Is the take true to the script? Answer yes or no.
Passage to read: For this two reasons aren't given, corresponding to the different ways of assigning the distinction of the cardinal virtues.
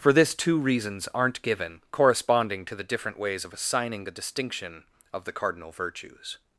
yes